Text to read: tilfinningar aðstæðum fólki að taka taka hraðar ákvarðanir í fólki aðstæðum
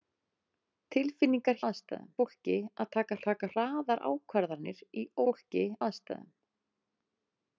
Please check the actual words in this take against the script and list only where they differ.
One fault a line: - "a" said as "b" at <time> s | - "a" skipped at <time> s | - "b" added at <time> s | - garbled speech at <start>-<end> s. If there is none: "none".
none